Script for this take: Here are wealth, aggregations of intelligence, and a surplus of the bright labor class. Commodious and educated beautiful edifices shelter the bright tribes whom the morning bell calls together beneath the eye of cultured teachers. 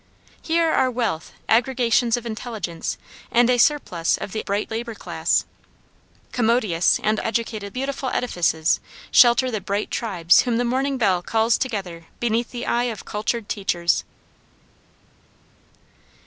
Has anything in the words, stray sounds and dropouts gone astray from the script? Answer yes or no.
no